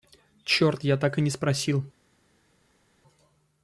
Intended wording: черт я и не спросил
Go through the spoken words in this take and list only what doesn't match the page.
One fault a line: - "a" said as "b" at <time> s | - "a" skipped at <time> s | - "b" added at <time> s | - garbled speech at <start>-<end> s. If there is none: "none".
- "так" added at 1.0 s